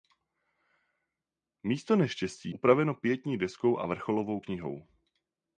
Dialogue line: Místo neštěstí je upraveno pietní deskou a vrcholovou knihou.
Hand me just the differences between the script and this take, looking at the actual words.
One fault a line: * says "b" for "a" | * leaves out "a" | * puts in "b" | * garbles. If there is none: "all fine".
* leaves out "je"